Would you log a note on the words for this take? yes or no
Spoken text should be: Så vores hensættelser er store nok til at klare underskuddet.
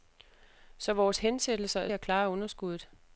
yes